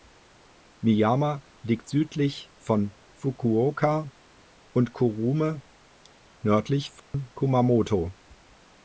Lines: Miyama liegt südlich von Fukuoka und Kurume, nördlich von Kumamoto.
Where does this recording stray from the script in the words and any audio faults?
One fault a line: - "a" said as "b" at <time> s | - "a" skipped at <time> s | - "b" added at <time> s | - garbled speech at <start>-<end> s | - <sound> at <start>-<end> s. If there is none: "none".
- dropout at 7.0-7.1 s